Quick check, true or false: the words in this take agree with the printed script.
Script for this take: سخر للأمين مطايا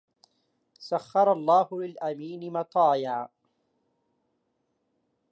false